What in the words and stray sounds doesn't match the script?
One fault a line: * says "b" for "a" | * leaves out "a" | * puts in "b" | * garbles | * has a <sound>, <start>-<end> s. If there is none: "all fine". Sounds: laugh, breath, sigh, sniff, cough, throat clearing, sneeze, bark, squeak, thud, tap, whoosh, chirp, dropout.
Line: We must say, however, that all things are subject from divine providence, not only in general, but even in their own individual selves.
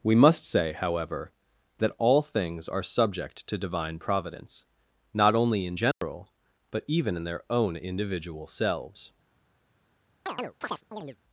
* says "to" for "from"
* has a dropout, 5.9-6.0 s
* has a chirp, 10.3-11.2 s